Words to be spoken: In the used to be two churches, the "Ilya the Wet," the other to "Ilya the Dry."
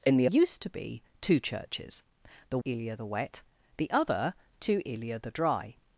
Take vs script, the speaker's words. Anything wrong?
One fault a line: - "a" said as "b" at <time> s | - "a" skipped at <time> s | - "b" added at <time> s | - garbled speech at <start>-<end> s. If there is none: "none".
none